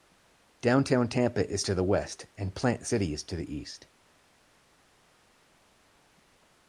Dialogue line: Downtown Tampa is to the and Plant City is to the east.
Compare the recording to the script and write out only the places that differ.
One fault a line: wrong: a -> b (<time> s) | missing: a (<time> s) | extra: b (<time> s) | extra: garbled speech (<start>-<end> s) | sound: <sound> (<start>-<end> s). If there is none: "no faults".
extra: west (1.8 s)